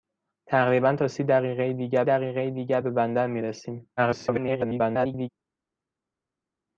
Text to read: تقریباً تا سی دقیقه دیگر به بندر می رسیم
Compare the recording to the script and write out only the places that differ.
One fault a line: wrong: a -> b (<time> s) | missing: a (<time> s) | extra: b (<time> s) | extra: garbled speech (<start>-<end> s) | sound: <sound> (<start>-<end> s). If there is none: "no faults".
extra: دقیقه دیگر (2.0 s)
extra: garbled speech (4.0-5.3 s)